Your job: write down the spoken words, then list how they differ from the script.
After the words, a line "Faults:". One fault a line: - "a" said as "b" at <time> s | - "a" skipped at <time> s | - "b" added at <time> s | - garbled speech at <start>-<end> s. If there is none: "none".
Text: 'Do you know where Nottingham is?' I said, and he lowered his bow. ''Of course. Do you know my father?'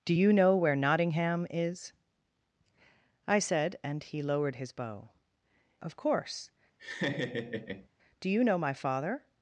'Do you know where Nottingham is?' I said, and he lowered his bow. ''Of course. Do you know my father?'
Faults:
none